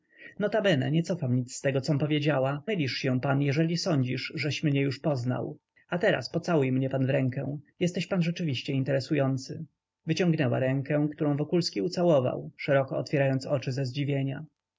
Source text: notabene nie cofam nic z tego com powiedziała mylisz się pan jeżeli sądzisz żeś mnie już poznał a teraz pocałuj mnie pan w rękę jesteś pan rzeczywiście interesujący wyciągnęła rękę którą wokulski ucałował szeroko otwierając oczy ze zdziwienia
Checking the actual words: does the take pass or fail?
pass